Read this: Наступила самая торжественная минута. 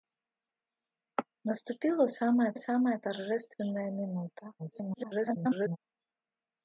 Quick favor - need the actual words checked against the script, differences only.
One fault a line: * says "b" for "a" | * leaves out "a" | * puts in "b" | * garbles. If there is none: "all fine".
* puts in "самая"
* garbles